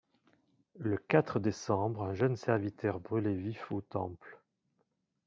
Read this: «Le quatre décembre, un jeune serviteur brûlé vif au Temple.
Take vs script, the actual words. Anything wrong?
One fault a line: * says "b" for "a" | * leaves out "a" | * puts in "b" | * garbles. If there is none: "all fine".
all fine